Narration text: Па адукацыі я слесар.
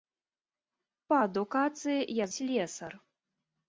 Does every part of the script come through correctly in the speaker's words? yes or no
yes